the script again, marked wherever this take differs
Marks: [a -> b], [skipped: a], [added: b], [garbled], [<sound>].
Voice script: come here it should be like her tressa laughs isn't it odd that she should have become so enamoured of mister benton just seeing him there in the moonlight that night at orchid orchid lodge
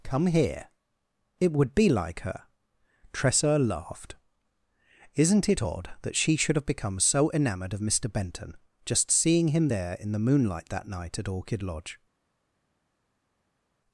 come here it [should -> would] be like her tressa [laughs -> laughed] isn't it odd that she should have become so enamoured of mister benton just seeing him there in the moonlight that night at orchid [skipped: orchid] lodge